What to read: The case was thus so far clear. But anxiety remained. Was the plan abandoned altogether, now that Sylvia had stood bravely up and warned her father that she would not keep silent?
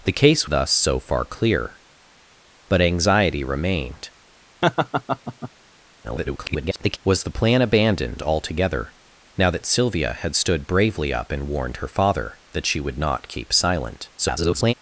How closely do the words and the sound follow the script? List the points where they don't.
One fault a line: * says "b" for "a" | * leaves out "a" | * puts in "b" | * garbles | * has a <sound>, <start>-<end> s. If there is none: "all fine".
* leaves out "was"
* has a laugh, 4.6-5.5 s
* garbles
* garbles